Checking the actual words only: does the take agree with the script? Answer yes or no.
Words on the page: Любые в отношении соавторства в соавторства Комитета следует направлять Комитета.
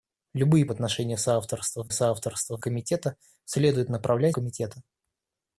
yes